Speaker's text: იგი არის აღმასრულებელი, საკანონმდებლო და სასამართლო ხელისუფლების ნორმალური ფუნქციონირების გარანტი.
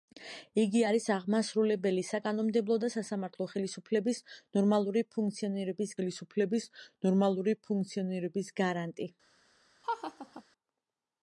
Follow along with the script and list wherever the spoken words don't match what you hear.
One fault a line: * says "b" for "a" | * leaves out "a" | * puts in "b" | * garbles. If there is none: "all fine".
* puts in "ხელისუფლების ნორმალური ფუნქციონირების"